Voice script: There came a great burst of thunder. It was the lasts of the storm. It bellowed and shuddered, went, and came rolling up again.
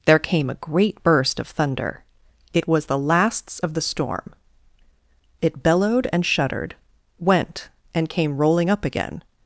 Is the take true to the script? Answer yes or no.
yes